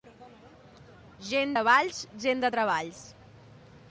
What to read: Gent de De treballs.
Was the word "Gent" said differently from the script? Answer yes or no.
no